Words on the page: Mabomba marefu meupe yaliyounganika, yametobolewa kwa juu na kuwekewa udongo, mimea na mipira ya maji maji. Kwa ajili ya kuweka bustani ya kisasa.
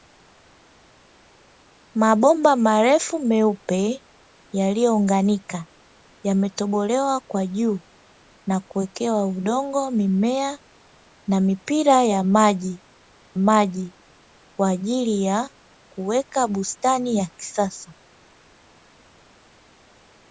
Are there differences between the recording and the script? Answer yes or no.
no